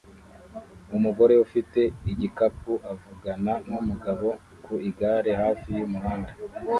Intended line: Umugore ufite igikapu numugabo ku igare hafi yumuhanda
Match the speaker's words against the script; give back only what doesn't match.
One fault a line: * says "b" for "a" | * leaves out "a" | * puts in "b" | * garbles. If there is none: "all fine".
* puts in "avugana"